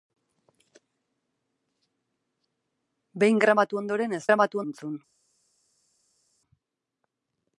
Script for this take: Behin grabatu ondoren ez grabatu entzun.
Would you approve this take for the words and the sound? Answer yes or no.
yes